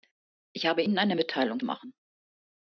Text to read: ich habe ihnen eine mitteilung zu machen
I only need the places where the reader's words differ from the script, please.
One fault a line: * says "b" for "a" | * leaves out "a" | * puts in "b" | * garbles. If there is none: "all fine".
* leaves out "zu"